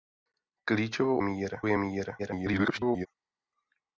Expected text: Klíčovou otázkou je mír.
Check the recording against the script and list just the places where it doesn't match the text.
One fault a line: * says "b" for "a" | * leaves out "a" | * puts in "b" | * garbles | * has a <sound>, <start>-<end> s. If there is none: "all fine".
* says "mír" for "otázkou"
* garbles